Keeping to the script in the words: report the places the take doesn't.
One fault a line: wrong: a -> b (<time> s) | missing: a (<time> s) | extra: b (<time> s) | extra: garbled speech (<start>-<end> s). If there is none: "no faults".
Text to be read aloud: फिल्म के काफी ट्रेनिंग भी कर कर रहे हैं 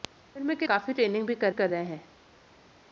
no faults